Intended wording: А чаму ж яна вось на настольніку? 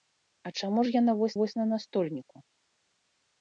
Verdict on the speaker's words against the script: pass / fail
fail